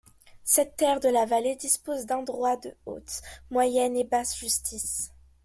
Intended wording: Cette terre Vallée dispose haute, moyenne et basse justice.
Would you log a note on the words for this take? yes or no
yes